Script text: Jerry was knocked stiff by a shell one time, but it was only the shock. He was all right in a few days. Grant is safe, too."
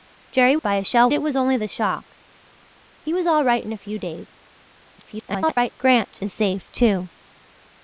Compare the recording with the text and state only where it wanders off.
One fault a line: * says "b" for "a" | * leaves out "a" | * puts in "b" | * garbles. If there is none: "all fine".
* leaves out "was knocked stiff"
* leaves out "one time but"
* garbles